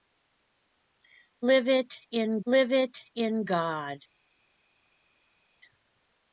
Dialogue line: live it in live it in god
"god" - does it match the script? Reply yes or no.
yes